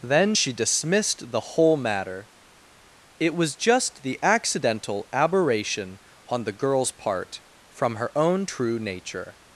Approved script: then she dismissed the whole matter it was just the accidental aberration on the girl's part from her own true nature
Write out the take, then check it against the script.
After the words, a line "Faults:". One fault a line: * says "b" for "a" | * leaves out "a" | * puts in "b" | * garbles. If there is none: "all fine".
then she dismissed the whole matter it was just the accidental aberration on the girl's part from her own true nature
Faults:
all fine